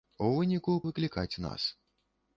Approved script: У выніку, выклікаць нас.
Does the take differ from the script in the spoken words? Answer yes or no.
no